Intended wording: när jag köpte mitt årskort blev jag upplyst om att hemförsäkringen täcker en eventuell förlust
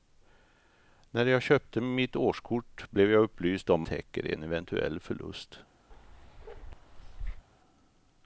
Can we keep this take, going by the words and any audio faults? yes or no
no